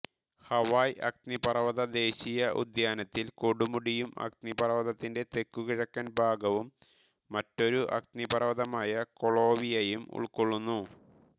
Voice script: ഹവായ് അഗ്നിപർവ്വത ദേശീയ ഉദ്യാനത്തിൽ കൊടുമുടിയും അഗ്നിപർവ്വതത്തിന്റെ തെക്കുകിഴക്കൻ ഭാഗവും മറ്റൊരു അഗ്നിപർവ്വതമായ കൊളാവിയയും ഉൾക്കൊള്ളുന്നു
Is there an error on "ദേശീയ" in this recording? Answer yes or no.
no